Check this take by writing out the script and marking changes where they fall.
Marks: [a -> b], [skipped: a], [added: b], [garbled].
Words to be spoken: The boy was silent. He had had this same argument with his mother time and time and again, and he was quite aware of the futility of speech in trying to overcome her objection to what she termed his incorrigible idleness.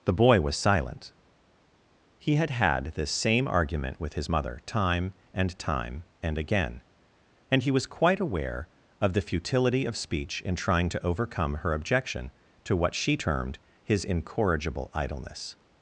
The boy was silent. He had had this same argument with his mother time and time and again, and he was quite aware of the futility of speech in trying to overcome her objection to what she termed his incorrigible idleness.